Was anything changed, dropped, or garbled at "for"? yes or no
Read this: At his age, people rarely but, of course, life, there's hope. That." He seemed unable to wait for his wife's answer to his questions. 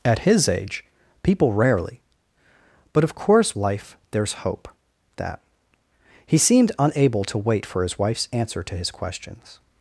no